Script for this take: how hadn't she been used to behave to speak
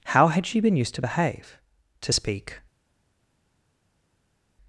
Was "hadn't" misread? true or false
true